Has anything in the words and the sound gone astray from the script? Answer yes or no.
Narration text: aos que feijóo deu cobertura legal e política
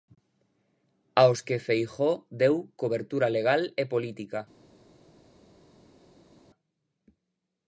no